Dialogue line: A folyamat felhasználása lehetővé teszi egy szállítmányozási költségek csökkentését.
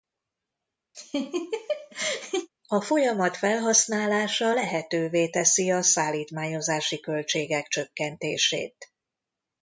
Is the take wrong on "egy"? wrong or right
wrong